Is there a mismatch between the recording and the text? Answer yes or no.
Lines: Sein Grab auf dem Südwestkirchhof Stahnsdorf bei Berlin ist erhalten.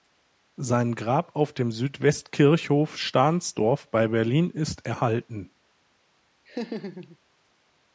no